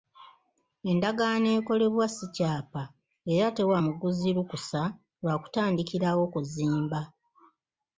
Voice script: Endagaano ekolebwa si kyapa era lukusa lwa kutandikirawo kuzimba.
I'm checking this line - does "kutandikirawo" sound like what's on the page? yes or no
yes